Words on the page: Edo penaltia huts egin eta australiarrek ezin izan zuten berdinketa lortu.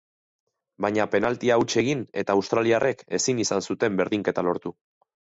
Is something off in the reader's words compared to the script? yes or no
yes